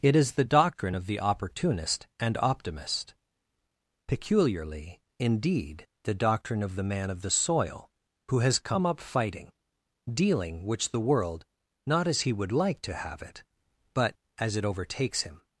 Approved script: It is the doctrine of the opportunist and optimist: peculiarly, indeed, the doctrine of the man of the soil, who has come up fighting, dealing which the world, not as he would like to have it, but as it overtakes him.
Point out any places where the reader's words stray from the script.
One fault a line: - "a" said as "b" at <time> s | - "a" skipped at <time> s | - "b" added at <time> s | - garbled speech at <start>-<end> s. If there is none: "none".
none